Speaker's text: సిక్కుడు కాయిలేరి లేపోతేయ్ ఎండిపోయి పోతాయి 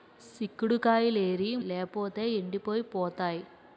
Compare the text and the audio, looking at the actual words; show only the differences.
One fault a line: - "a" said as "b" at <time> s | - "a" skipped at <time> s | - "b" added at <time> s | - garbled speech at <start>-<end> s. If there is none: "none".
none